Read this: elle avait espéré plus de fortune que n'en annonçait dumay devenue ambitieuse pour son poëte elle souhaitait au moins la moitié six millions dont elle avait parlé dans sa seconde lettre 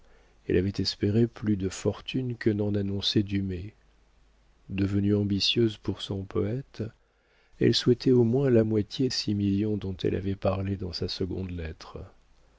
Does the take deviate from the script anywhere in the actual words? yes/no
no